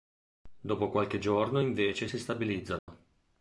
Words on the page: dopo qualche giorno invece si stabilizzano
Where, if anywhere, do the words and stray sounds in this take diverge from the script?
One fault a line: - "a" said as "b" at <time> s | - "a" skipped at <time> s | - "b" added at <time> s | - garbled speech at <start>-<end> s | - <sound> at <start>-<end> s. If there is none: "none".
- dropout at 2.8-2.9 s